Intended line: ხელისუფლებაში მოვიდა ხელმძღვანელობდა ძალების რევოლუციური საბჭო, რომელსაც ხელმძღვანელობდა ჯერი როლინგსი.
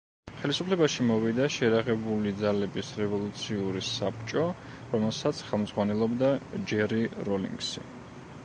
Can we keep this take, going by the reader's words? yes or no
no